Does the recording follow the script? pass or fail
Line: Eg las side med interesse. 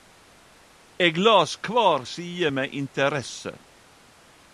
fail